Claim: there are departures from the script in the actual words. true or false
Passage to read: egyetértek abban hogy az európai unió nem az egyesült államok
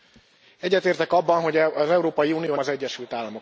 true